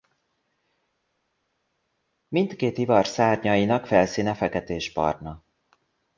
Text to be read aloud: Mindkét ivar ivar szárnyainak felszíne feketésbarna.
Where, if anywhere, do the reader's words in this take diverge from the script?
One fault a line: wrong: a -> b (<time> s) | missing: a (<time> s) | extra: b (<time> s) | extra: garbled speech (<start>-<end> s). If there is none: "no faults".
missing: ivar (3.1 s)